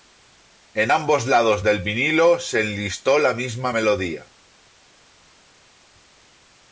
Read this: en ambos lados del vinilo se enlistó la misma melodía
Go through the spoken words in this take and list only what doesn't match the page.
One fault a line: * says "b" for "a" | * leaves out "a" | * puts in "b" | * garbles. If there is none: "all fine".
all fine